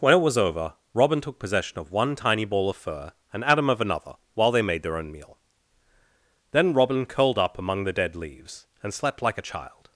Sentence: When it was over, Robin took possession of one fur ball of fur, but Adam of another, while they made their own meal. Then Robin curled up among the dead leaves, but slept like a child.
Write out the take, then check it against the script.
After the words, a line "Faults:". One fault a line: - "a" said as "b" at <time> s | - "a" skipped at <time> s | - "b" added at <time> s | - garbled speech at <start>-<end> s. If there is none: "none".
When it was over, Robin took possession of one tiny ball of fur, and Adam of another, while they made their own meal. Then Robin curled up among the dead leaves, and slept like a child.
Faults:
- "fur" said as "tiny" at 2.1 s
- "but" said as "and" at 3.3 s
- "but" said as "and" at 8.8 s